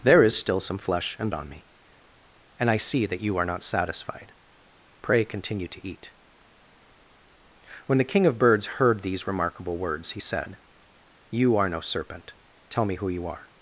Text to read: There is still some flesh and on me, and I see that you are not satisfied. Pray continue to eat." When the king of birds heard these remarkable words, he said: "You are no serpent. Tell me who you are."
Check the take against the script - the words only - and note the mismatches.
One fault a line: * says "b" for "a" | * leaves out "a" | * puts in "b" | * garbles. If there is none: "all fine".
all fine